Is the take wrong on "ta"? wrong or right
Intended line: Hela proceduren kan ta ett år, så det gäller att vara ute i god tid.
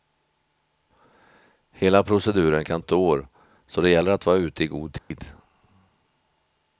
wrong